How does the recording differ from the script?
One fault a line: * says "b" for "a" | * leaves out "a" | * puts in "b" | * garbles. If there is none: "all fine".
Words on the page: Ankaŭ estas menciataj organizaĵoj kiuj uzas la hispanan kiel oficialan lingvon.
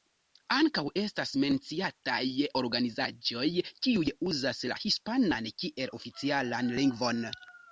all fine